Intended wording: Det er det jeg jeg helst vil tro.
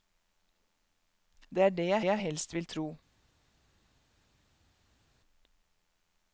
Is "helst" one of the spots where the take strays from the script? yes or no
no